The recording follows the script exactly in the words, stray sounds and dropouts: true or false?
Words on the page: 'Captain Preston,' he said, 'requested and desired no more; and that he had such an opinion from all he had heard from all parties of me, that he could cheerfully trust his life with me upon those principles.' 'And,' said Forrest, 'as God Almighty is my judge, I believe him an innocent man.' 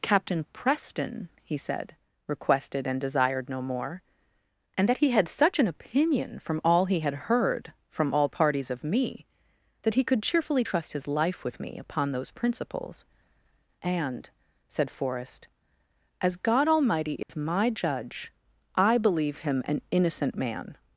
false